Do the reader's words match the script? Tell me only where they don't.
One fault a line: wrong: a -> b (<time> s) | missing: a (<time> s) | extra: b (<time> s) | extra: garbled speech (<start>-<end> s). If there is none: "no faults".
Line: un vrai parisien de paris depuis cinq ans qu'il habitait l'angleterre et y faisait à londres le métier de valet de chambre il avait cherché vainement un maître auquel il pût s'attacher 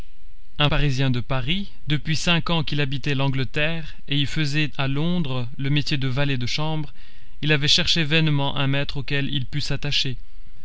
missing: vrai (0.7 s)